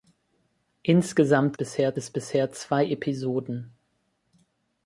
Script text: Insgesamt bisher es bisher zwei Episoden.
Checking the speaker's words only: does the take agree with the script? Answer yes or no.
yes